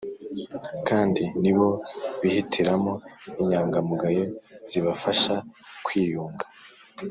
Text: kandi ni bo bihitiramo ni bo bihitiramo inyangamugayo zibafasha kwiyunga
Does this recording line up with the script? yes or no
no